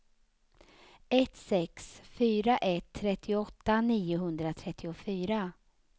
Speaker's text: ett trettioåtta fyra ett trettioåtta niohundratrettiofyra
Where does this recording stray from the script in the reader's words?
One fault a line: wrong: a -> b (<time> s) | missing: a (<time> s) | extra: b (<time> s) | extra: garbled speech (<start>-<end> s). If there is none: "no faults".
wrong: trettioåtta -> sex (1.4 s)